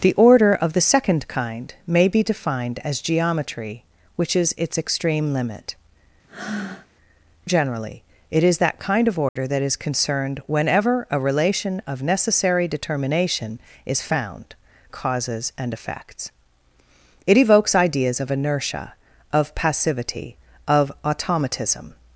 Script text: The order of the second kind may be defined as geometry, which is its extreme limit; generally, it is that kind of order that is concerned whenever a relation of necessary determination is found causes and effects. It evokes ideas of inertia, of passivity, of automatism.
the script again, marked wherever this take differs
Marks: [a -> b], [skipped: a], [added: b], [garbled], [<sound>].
The order of the second kind may be defined as geometry, which is its extreme limit; [breath] generally, it is that kind of order [dropout] that is concerned whenever a relation of necessary determination is found causes and effects. It evokes ideas of inertia, of passivity, of automatism.